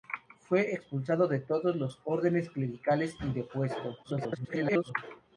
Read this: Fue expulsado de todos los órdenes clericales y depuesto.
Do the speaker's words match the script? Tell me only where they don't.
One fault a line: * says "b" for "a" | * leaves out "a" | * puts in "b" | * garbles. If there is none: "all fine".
* garbles